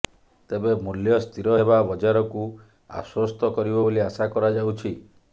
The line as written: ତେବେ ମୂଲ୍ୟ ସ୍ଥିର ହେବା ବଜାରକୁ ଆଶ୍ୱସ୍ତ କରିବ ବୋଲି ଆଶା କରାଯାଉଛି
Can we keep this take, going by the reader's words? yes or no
yes